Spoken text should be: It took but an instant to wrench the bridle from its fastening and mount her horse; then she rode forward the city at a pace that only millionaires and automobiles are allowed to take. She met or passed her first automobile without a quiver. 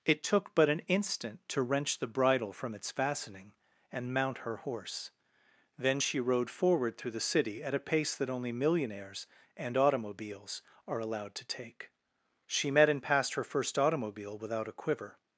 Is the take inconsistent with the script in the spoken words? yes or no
yes